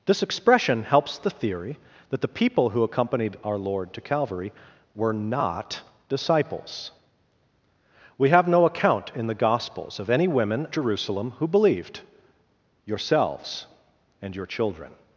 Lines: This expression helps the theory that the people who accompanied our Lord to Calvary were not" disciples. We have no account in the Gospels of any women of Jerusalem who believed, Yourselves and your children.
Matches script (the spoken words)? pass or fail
fail